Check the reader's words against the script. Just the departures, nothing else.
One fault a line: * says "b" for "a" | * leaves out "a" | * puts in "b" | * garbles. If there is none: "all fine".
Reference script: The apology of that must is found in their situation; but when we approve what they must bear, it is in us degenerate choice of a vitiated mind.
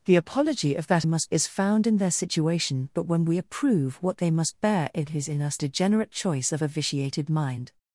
all fine